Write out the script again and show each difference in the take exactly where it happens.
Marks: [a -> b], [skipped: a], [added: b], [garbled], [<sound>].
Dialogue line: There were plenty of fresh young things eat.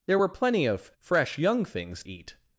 There were plenty of fresh young things eat.